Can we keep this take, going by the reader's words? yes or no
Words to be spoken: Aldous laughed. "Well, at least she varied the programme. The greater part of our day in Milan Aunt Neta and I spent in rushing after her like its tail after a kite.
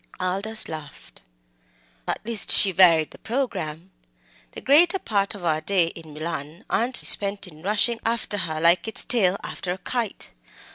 no